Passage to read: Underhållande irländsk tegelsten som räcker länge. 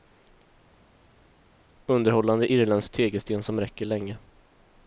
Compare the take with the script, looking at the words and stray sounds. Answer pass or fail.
pass